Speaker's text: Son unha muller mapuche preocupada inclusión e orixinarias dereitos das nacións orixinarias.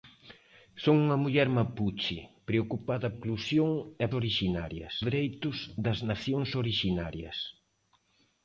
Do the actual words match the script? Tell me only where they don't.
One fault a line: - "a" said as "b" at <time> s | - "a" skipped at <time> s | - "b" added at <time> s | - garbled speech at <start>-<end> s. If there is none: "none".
none